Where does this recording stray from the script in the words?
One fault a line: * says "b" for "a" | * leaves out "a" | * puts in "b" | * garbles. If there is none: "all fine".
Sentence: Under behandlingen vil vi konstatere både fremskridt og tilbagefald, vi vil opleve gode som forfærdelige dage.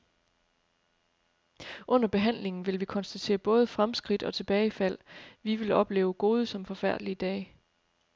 all fine